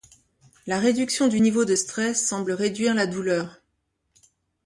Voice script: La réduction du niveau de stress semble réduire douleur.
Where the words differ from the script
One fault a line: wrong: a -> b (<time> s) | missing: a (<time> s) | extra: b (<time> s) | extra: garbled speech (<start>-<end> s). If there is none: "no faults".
extra: la (2.9 s)